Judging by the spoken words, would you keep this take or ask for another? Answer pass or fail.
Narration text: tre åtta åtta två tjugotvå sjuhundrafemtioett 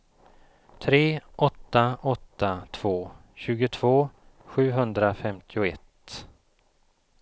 pass